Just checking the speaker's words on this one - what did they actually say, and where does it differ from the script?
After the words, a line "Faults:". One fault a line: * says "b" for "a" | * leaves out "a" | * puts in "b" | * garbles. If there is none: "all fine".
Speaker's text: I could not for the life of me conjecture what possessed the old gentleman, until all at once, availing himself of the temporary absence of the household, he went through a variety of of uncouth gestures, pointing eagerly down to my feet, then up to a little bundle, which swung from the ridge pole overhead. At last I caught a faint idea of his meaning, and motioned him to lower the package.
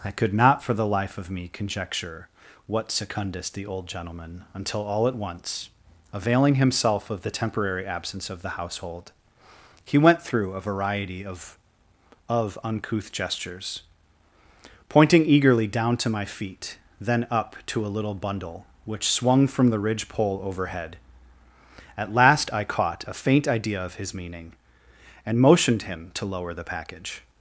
I could not for the life of me conjecture what secundus the old gentleman, until all at once, availing himself of the temporary absence of the household, he went through a variety of of uncouth gestures, pointing eagerly down to my feet, then up to a little bundle, which swung from the ridge pole overhead. At last I caught a faint idea of his meaning, and motioned him to lower the package.
Faults:
* says "secundus" for "possessed"